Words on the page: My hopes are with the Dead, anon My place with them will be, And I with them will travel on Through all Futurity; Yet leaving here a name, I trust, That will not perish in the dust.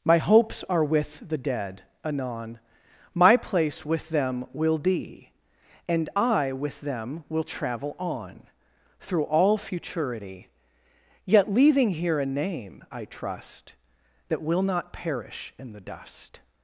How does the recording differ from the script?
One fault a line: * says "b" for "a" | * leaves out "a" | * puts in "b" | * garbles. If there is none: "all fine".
all fine